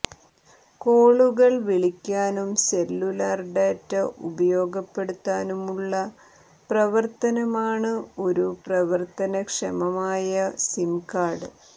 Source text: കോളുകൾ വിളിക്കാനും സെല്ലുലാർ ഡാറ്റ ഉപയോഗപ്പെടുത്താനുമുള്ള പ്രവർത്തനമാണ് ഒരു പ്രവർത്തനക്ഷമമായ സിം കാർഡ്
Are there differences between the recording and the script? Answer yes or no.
no